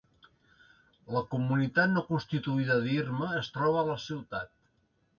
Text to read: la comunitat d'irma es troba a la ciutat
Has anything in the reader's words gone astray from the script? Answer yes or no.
yes